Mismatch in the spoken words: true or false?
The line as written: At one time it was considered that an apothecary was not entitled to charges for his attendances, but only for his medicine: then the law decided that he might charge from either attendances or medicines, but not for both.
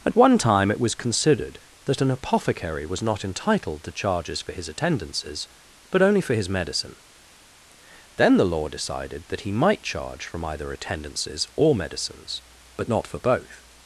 false